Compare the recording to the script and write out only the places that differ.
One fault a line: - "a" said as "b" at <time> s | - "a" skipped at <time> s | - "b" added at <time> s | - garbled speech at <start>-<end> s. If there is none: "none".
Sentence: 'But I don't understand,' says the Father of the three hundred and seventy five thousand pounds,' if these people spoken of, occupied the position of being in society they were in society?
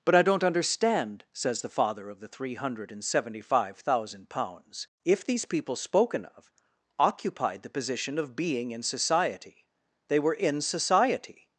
none